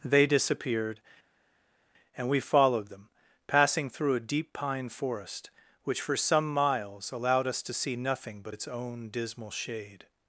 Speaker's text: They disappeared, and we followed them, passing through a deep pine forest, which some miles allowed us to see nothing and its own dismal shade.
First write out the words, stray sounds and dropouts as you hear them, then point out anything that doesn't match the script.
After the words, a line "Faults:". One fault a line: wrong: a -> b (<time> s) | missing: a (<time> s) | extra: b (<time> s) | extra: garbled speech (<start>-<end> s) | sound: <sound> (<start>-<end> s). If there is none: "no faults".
They disappeared, and we followed them, passing through a deep pine forest, which for some miles allowed us to see nothing but its own dismal shade.
Faults:
extra: for (6.0 s)
wrong: and -> but (8.4 s)